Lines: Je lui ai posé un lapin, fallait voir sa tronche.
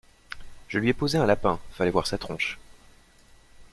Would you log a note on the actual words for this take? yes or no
no